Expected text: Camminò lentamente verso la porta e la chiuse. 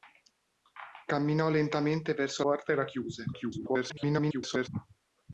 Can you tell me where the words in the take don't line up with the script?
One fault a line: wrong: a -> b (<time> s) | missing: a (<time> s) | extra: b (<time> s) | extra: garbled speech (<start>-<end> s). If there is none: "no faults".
missing: la (2.4 s)
extra: garbled speech (3.3-4.7 s)